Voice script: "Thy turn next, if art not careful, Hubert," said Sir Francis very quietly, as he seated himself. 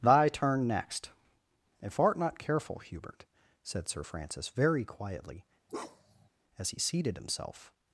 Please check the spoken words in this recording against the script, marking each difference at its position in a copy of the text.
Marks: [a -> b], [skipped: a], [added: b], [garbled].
"Thy turn next, if art not careful, Hubert," said Sir Francis very quietly, as he seated himself.